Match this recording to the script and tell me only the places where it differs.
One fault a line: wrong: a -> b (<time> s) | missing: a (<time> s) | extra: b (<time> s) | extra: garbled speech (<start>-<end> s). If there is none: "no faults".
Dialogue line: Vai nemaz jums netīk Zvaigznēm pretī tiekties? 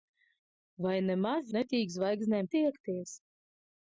missing: jums (1.5 s)
missing: pretī (2.5 s)